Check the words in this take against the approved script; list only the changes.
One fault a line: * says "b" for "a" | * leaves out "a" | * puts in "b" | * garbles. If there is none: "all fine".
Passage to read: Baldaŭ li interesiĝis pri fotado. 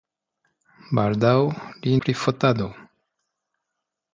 * leaves out "interesiĝis"